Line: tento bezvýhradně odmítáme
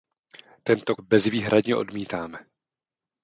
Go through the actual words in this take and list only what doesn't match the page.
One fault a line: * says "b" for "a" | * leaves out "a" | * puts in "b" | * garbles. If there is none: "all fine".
all fine